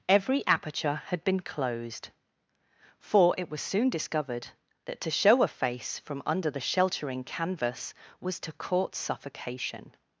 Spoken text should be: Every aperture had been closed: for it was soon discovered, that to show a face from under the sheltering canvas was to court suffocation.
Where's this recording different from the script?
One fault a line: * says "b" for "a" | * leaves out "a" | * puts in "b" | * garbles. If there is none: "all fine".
all fine